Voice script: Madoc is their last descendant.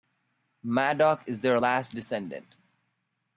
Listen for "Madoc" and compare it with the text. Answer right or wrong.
right